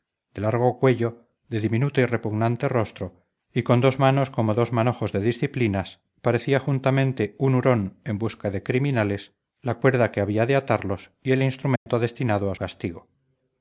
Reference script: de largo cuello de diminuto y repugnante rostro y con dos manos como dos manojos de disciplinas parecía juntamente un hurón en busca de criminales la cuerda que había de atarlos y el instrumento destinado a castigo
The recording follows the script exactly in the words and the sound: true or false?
false